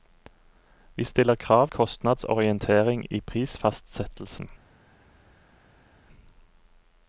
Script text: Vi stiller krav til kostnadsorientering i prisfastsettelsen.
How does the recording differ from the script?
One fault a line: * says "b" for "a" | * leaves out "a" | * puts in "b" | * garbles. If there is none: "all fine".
* leaves out "til"